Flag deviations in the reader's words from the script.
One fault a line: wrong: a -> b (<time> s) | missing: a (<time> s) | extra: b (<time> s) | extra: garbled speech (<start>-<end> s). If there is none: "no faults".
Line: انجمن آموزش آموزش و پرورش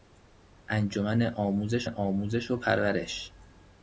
no faults